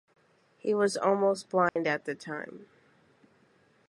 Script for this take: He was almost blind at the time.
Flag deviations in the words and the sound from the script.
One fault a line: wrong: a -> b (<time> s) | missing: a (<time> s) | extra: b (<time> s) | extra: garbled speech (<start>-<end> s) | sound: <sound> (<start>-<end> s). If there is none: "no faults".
sound: dropout (1.7-1.8 s)